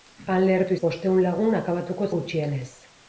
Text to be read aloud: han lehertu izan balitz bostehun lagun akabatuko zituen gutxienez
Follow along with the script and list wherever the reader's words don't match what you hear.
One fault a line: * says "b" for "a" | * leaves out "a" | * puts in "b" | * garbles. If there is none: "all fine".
* leaves out "izan balitz"
* leaves out "zituen"